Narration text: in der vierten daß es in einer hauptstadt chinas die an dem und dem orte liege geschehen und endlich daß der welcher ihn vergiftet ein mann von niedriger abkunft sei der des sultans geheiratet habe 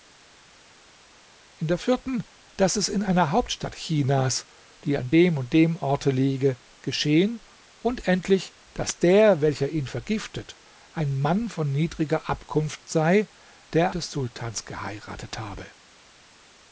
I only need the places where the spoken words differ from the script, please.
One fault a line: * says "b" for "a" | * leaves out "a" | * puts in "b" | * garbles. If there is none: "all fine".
all fine